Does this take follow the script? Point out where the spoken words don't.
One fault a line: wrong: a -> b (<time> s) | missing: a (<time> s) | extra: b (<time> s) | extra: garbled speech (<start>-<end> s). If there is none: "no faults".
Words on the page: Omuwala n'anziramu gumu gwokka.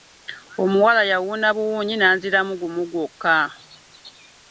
extra: yawuuna buwuunyi (1.1 s)